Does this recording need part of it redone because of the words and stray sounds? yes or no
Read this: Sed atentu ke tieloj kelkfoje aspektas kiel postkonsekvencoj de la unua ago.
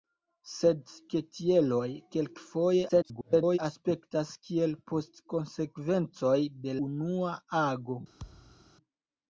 yes